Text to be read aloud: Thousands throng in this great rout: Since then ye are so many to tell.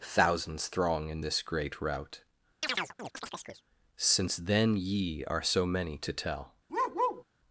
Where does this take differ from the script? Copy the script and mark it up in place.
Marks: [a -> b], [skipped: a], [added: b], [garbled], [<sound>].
Thousands throng in this great rout: [chirp] Since then ye are so many to tell. [bark]